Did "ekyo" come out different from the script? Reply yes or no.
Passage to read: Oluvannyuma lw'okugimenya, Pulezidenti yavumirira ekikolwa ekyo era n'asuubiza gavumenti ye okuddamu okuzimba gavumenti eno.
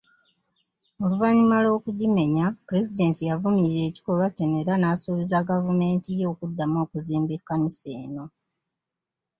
yes